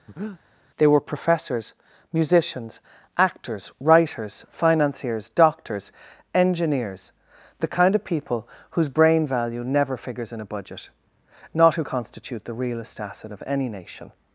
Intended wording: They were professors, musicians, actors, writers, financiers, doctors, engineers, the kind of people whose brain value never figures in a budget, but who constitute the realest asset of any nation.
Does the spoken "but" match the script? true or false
false